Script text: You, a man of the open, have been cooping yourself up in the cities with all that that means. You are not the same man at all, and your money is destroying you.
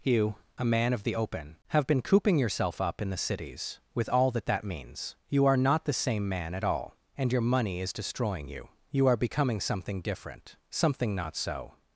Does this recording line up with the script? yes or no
no